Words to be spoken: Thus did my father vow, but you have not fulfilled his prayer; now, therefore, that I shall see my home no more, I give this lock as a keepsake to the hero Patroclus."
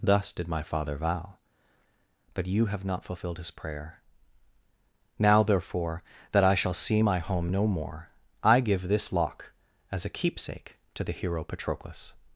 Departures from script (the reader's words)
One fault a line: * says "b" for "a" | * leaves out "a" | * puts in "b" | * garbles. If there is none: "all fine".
all fine